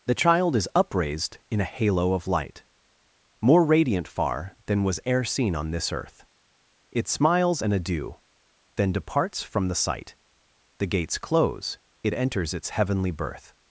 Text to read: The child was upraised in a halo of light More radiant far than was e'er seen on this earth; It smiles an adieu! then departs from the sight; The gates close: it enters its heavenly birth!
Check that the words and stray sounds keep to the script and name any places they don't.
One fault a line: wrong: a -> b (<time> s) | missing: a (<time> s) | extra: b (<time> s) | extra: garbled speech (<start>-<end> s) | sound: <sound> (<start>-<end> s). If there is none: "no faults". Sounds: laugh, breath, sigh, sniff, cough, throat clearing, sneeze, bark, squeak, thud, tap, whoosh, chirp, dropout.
wrong: was -> is (0.6 s)